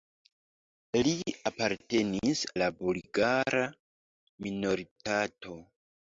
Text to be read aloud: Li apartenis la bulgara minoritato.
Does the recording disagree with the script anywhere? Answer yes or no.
no